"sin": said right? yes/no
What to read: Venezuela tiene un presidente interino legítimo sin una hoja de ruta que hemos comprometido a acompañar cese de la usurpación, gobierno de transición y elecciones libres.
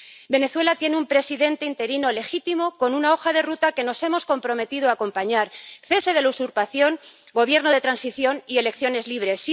no